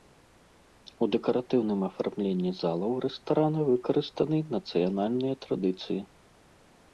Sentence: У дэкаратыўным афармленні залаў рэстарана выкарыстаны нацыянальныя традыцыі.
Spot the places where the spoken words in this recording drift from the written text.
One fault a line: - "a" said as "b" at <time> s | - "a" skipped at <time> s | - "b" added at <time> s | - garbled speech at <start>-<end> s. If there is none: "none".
none